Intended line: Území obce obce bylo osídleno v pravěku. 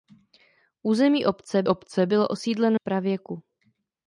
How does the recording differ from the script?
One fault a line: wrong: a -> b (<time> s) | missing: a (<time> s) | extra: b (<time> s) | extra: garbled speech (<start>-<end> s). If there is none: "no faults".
no faults